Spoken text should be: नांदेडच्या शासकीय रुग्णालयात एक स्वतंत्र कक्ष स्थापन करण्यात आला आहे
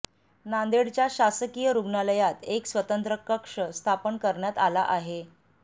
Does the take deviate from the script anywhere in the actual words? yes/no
no